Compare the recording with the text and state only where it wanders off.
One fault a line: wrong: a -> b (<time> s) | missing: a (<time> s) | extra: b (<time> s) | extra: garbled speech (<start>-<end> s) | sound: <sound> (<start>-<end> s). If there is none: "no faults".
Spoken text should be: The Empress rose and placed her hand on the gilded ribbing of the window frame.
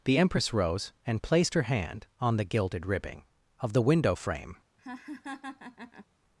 sound: laugh (4.8-6.1 s)